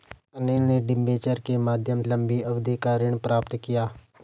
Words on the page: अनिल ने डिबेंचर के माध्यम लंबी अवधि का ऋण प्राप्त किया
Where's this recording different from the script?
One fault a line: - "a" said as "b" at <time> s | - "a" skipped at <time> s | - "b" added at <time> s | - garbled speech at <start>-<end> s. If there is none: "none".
none